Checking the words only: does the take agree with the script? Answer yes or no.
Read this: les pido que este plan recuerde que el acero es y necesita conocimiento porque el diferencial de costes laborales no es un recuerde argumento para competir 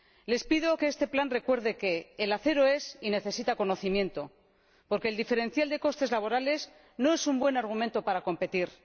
no